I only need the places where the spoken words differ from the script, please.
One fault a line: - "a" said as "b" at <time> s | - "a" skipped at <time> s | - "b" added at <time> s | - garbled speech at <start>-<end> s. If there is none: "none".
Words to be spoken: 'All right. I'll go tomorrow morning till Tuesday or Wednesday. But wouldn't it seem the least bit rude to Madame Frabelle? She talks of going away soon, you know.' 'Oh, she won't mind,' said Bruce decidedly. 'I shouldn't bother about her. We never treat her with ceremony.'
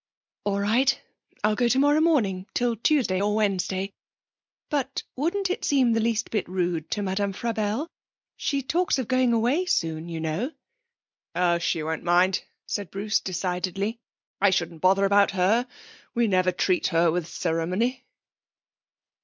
none